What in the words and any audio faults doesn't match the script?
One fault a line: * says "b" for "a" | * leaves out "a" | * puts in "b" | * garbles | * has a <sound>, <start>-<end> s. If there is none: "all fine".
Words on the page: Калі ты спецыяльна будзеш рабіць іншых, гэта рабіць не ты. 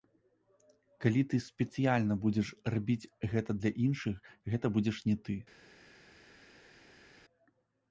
* puts in "гэта для"
* says "будзеш" for "рабіць"